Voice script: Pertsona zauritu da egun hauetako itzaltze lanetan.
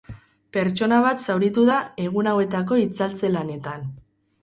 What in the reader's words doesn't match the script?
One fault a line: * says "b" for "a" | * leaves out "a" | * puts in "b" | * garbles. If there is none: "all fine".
* puts in "bat"